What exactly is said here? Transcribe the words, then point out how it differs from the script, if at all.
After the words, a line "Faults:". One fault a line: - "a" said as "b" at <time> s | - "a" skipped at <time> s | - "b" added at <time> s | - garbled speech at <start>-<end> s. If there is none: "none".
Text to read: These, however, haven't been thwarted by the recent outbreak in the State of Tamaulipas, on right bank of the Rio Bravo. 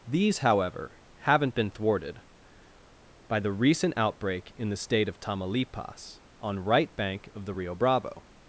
These, however, haven't been thwarted by the recent outbreak in the State of Tamaulipas, on right bank of the Rio Bravo.
Faults:
none